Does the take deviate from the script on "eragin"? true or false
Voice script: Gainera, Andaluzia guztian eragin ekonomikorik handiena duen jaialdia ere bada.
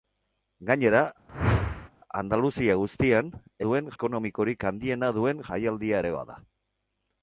true